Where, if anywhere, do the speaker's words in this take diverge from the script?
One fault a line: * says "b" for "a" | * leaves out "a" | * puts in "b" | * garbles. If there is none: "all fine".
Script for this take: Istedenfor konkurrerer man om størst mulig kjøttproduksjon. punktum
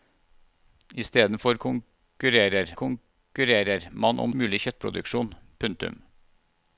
* puts in "konkurrerer"
* leaves out "størst"